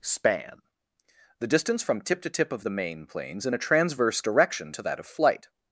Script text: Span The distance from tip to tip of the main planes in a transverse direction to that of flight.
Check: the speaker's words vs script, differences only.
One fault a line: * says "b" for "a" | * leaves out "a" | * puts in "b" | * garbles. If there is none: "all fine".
all fine